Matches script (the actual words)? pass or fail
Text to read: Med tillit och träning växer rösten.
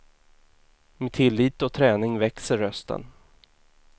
pass